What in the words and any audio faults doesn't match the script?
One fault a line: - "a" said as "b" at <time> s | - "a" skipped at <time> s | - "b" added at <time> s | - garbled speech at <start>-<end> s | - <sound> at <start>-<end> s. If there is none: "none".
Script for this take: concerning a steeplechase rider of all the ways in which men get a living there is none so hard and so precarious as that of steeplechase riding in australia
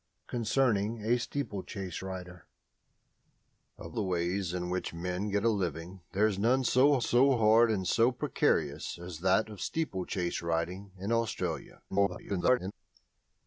- "all" skipped at 4.0 s
- "so" added at 7.0 s
- garbled speech at 11.9-12.7 s